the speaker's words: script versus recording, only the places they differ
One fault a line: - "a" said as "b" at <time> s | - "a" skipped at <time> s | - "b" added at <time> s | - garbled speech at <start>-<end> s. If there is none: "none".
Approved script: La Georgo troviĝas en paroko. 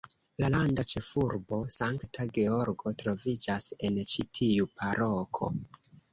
- "landa ĉefurbo Sankta" added at 0.5 s
- "ĉi tiu" added at 4.1 s